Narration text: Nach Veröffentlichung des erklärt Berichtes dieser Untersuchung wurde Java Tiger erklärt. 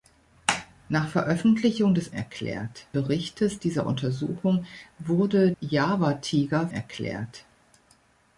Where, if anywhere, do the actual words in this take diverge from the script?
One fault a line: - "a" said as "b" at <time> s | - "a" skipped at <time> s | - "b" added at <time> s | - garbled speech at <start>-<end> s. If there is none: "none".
none